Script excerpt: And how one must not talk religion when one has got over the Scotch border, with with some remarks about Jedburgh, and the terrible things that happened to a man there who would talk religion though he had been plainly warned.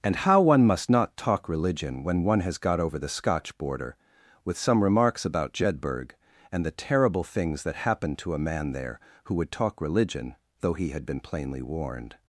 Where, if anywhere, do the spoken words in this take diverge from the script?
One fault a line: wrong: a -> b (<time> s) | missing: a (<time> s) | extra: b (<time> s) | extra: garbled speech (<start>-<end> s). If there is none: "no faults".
missing: with (4.6 s)